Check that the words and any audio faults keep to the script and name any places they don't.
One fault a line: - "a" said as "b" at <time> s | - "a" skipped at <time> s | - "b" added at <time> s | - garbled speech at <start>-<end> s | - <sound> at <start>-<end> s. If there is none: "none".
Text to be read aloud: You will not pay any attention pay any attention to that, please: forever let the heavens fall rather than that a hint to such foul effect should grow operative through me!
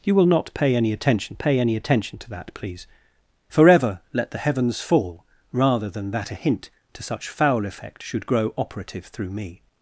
none